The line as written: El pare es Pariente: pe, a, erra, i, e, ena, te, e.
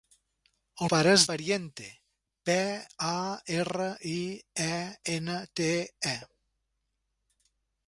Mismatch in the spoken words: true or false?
false